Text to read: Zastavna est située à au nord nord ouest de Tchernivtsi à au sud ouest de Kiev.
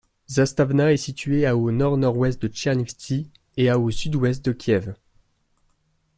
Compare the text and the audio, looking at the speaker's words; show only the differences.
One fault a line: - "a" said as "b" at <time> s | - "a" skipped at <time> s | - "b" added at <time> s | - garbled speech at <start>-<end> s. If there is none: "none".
- "et" added at 3.6 s